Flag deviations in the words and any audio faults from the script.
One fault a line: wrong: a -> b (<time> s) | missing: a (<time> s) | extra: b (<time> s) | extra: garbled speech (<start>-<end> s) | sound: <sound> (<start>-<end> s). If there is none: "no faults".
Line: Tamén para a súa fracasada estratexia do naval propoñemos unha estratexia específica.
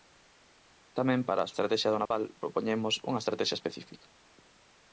missing: súa fracasada (1.5 s)
sound: dropout (2.1-2.1 s)